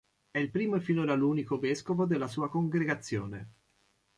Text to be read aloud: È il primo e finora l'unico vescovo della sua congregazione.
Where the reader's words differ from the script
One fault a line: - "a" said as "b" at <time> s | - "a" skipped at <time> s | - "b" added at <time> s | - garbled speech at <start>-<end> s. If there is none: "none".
none